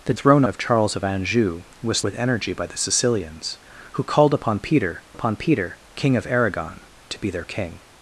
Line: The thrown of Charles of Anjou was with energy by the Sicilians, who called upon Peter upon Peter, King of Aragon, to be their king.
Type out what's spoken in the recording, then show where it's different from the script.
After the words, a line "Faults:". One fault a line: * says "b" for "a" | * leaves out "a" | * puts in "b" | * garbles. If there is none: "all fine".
The thrown of Charles of Anjou was with energy by the Sicilians, who called upon Peter upon Peter, King of Aragon, to be their king.
Faults:
all fine